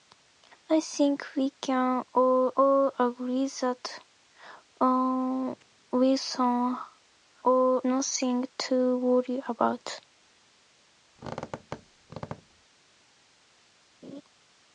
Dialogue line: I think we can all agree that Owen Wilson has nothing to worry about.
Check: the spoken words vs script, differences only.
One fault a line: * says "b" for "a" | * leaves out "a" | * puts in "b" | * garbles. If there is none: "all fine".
* puts in "all"
* says "all" for "has"